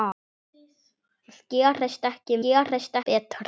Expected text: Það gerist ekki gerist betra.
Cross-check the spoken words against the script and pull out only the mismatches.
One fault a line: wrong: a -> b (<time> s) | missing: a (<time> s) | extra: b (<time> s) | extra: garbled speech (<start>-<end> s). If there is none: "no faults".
no faults